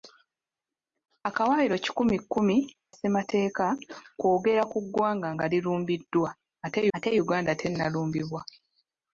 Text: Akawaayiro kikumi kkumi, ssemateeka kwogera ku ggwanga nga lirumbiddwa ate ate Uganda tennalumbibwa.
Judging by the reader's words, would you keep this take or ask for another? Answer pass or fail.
pass